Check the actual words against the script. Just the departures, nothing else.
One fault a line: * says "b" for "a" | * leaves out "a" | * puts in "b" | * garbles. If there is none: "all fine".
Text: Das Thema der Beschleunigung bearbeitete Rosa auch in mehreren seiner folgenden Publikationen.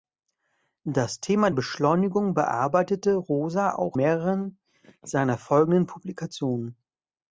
* leaves out "der"
* leaves out "in"